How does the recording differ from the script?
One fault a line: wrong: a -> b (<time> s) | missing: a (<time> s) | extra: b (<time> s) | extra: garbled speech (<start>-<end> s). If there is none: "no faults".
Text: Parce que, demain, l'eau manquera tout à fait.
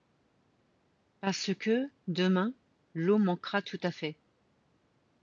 no faults